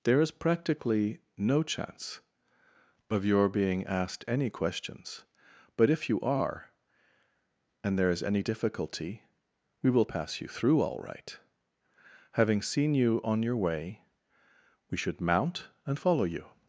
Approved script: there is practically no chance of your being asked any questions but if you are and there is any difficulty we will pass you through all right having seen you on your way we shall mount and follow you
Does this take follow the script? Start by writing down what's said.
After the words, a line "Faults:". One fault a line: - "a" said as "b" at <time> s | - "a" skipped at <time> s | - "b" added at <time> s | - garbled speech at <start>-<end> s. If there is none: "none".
there is practically no chance of your being asked any questions but if you are and there is any difficulty we will pass you through all right having seen you on your way we should mount and follow you
Faults:
- "shall" said as "should" at 15.0 s